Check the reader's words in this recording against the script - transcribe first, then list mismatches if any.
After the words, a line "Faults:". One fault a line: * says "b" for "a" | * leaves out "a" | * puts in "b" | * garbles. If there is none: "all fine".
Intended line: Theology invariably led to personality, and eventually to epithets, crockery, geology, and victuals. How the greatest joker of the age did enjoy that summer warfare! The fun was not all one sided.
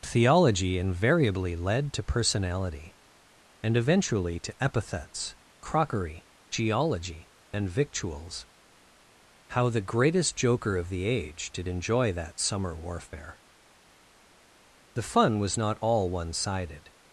Theology invariably led to personality, and eventually to epithets, crockery, geology, and victuals. How the greatest joker of the age did enjoy that summer warfare! The fun was not all one sided.
Faults:
all fine